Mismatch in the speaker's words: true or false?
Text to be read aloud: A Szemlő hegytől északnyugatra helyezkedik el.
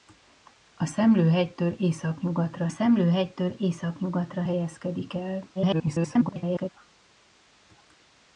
true